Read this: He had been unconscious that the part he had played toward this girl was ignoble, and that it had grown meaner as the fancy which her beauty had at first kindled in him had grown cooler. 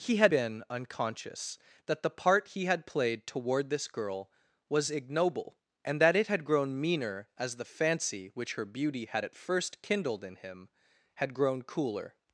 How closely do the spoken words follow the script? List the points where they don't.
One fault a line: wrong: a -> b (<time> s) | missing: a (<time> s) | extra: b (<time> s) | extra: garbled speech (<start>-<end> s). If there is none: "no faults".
no faults